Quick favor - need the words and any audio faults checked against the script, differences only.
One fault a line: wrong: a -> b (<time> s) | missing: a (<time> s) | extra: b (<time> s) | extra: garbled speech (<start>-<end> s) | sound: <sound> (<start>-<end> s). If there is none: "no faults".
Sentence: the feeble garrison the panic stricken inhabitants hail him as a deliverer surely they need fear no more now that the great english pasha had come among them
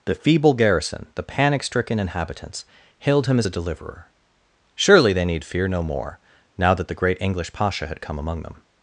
wrong: hail -> hailed (3.0 s)